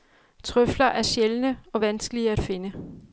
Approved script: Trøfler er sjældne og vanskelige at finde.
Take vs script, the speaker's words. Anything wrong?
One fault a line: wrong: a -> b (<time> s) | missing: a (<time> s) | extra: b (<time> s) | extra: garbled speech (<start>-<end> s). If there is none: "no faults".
no faults